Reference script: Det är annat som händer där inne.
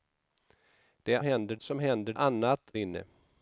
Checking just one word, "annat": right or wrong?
wrong